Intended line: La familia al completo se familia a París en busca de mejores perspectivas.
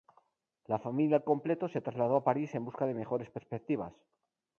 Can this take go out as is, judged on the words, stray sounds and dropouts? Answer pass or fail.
fail